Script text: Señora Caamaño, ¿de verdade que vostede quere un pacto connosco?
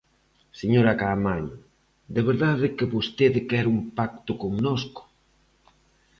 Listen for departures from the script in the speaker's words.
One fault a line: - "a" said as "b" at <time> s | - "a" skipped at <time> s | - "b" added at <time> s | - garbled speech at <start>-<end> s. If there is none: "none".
none